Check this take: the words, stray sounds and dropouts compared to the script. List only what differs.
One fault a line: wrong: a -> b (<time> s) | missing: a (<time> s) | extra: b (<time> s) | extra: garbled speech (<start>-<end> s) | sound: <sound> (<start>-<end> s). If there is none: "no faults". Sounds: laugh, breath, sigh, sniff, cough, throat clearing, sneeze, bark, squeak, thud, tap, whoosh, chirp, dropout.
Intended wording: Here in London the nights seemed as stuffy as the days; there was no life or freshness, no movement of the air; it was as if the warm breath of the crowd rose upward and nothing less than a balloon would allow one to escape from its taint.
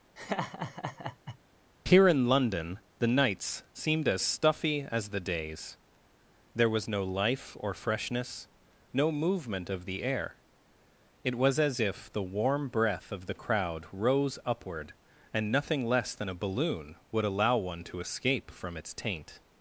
sound: laugh (0.2-1.4 s)